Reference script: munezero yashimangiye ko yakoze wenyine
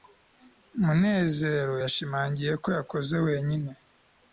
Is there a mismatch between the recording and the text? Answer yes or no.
no